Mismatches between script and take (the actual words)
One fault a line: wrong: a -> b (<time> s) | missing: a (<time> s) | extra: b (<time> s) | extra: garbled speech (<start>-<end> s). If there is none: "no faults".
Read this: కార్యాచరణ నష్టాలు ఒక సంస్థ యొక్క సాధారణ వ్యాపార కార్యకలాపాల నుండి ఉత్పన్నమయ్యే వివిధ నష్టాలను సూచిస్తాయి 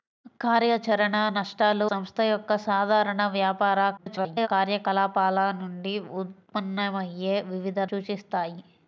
missing: ఒక (1.9 s)
extra: garbled speech (4.0-4.5 s)
missing: నష్టాలను (7.8 s)